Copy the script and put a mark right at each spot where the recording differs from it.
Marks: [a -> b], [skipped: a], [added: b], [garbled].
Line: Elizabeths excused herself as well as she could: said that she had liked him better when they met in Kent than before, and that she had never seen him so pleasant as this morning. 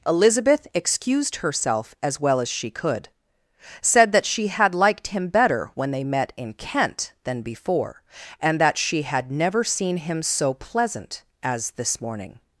[Elizabeths -> Elizabeth] excused herself as well as she could: said that she had liked him better when they met in Kent than before, and that she had never seen him so pleasant as this morning.